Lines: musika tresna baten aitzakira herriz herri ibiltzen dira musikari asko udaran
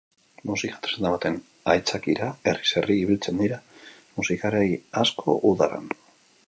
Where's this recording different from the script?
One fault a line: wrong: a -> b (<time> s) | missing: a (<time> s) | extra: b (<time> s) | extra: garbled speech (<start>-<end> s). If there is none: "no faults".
no faults